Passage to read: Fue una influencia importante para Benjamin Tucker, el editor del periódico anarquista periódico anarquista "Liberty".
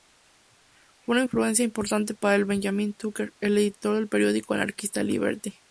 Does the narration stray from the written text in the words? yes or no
yes